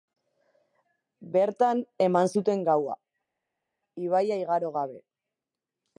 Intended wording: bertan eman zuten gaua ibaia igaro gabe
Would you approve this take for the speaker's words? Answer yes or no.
yes